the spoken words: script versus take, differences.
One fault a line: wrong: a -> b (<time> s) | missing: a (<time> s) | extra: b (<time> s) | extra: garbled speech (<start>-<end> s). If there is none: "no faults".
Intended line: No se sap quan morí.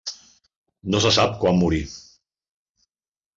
no faults